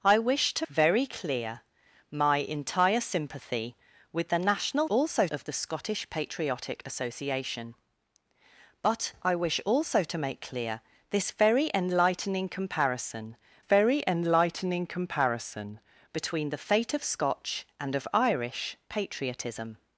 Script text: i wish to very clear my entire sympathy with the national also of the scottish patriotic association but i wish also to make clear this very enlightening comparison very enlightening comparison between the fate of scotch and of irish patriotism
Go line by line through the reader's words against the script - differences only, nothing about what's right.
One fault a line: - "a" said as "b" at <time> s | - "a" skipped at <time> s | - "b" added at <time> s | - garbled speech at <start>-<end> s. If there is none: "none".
none